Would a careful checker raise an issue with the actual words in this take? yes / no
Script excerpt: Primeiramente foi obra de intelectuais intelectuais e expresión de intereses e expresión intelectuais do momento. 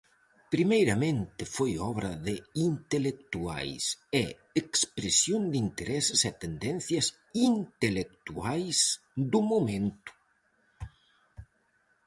yes